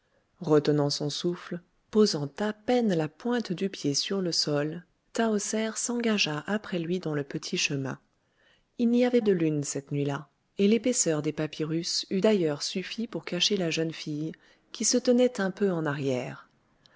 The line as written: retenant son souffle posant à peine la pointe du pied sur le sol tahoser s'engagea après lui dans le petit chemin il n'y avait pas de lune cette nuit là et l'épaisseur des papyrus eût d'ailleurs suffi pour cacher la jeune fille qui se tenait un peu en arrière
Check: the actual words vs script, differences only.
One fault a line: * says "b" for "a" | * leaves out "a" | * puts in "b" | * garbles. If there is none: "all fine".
* leaves out "pas"